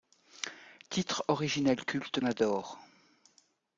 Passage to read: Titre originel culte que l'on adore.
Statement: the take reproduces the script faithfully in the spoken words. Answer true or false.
false